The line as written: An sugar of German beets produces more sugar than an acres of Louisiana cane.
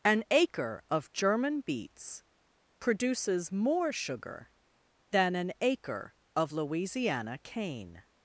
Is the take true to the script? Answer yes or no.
no